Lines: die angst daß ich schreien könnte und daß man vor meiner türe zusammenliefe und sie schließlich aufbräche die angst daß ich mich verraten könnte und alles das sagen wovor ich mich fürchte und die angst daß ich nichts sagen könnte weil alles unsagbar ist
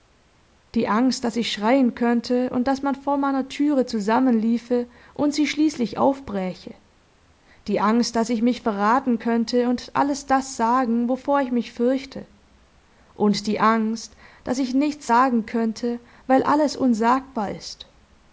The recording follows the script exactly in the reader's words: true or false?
true